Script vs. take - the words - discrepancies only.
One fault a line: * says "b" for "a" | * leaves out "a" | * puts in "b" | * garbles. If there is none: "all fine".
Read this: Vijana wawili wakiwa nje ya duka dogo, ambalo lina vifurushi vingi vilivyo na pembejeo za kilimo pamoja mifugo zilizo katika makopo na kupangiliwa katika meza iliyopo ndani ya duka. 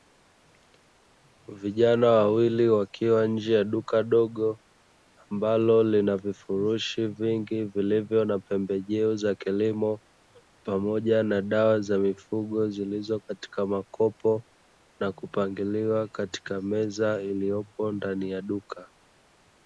* puts in "na dawa za"